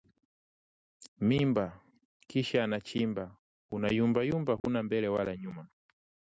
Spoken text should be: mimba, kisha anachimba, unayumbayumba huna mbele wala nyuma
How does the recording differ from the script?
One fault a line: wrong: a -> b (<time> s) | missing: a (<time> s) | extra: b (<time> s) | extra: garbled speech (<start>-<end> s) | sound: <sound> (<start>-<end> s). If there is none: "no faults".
sound: dropout (4.6-4.6 s)